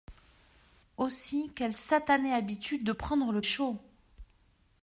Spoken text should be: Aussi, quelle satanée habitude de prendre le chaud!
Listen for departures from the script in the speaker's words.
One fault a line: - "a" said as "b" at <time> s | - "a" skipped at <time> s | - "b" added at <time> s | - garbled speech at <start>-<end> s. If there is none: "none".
none